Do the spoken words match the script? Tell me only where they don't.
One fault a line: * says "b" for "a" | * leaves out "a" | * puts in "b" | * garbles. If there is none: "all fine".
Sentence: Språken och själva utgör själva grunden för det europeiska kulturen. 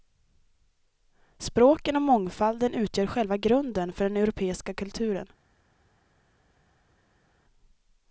* says "mångfalden" for "själva"
* says "den" for "det"